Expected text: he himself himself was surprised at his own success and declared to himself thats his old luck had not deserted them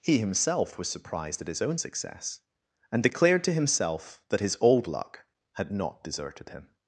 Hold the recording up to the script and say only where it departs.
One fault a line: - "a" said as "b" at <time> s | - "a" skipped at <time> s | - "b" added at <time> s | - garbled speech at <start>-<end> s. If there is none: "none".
- "himself" skipped at 0.8 s
- "thats" said as "that" at 4.3 s
- "them" said as "him" at 6.5 s